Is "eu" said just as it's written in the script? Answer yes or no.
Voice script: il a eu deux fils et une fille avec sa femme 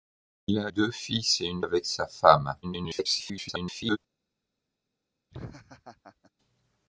no